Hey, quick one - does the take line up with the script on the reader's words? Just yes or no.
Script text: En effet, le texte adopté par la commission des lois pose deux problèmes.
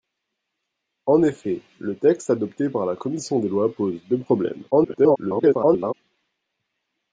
no